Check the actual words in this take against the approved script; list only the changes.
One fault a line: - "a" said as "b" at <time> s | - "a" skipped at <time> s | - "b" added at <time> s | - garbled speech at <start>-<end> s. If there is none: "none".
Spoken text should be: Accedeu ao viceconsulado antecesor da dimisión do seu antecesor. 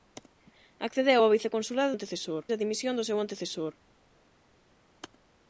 none